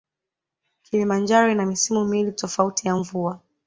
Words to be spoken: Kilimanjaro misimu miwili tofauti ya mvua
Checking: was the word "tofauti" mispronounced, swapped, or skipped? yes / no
no